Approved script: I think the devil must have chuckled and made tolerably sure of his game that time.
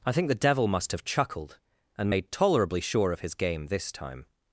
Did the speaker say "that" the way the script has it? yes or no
no